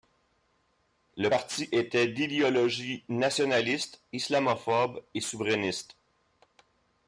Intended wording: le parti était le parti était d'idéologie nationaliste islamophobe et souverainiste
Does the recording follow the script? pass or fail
fail